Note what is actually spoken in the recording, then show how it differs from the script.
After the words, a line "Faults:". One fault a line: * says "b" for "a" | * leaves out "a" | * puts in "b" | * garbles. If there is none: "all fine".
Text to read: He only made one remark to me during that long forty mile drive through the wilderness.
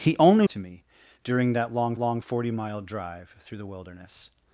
He only to me during that long long forty mile drive through the wilderness.
Faults:
* leaves out "made one remark"
* puts in "long"